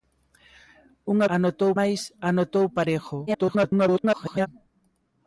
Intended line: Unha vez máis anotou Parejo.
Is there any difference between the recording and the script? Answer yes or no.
yes